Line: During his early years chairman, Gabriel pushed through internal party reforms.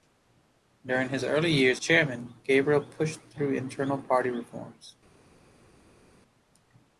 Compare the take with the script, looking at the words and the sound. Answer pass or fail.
pass